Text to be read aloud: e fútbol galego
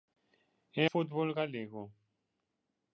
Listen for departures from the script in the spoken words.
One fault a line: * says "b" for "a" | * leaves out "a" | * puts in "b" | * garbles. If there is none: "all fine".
all fine